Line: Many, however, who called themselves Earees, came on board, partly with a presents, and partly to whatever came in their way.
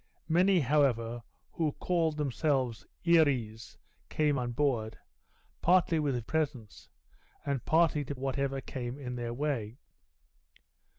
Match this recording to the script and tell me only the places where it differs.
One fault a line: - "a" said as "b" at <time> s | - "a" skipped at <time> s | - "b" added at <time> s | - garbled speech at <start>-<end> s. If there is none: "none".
none